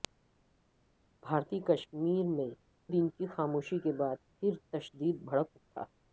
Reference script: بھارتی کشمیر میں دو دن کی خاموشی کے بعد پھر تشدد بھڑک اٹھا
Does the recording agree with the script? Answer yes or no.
no